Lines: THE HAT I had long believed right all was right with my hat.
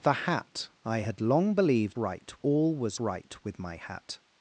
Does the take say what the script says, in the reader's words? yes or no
yes